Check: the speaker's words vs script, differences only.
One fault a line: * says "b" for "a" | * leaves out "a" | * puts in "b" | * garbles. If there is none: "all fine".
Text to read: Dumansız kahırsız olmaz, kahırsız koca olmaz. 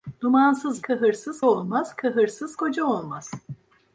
all fine